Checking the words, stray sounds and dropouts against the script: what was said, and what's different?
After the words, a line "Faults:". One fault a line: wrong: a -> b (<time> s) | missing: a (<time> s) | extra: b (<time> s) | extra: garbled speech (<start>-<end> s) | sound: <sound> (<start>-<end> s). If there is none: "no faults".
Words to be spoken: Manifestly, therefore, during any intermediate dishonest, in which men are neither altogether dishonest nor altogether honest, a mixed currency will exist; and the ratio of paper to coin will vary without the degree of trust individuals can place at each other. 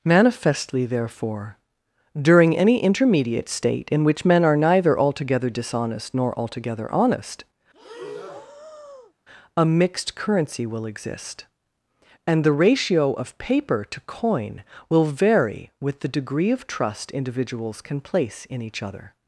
Manifestly, therefore, during any intermediate state, in which men are neither altogether dishonest nor altogether honest, a mixed currency will exist; and the ratio of paper to coin will vary with the degree of trust individuals can place in each other.
Faults:
wrong: dishonest -> state (3.5 s)
sound: breath (7.7-9.1 s)
wrong: without -> with (15.8 s)
wrong: at -> in (18.5 s)